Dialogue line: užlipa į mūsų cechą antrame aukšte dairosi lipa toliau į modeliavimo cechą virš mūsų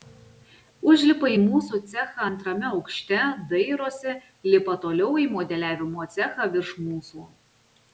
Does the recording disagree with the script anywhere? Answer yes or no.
no